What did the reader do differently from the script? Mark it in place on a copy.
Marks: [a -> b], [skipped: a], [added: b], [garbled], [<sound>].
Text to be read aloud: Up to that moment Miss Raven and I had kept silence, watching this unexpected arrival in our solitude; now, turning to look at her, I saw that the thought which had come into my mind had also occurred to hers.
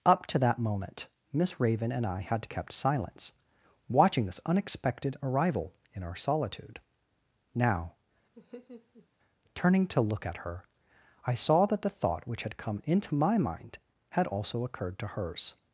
Up to that moment Miss Raven and I had kept silence, watching this unexpected arrival in our solitude; now, [laugh] turning to look at her, I saw that the thought which had come into my mind had also occurred to hers.